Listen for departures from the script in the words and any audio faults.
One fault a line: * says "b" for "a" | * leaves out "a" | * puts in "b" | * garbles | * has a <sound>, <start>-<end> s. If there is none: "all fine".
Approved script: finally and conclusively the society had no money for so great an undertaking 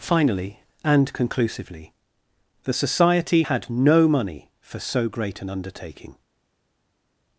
all fine